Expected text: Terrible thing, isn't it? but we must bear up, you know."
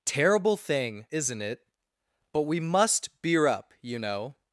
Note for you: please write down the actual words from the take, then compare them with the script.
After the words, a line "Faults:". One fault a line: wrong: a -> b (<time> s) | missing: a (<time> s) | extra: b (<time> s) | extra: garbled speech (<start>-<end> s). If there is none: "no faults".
Terrible thing, isn't it? but we must beer up, you know."
Faults:
wrong: bear -> beer (3.2 s)